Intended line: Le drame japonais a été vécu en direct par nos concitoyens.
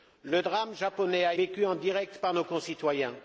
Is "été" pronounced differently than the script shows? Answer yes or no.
yes